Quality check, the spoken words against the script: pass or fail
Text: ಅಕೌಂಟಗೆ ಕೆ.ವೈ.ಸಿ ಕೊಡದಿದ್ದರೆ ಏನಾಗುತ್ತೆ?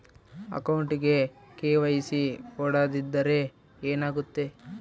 pass